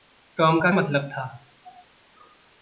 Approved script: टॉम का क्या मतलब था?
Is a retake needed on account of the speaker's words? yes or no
yes